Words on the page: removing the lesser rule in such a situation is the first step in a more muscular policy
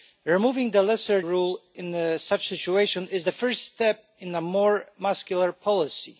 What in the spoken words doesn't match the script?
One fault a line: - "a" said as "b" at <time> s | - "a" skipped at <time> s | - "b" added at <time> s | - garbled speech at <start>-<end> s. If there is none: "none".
none